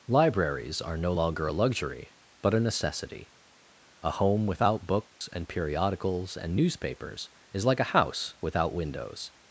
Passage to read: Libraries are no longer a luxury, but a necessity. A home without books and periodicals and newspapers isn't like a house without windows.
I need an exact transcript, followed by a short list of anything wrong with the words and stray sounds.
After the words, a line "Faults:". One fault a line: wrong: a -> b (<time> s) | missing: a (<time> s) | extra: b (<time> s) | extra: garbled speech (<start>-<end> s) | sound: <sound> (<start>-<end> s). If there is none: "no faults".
Libraries are no longer a luxury, but a necessity. A home without books and periodicals and newspapers is like a house without windows.
Faults:
sound: dropout (5.1-5.2 s)
wrong: isn't -> is (7.5 s)